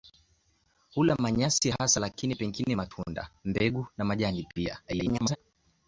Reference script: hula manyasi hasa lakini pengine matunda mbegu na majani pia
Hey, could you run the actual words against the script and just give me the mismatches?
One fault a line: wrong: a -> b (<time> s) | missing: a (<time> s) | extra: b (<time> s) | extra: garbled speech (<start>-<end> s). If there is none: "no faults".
extra: garbled speech (4.9-5.4 s)